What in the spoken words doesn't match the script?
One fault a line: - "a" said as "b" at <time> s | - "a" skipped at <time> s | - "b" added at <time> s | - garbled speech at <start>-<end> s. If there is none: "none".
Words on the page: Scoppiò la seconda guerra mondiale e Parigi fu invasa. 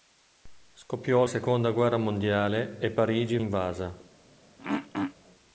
- "la" skipped at 1.2 s
- "fu" skipped at 3.4 s